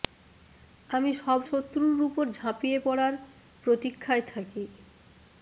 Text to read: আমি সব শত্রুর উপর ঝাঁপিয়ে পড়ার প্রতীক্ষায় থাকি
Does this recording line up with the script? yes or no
yes